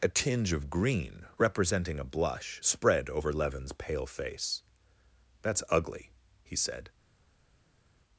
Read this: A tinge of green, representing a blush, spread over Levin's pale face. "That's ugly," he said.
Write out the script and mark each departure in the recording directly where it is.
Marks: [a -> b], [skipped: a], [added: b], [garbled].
A tinge of green, representing a blush, spread over Levin's pale face. "That's ugly," he said.